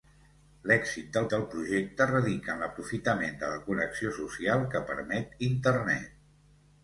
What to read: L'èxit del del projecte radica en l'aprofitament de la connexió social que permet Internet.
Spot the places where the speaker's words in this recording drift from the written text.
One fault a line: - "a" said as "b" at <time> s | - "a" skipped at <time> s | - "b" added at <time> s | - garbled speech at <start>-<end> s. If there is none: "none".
none